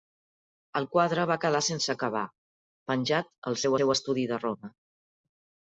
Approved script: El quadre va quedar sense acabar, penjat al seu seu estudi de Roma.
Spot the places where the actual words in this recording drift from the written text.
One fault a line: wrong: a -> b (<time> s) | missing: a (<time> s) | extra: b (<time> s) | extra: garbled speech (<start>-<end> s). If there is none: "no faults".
no faults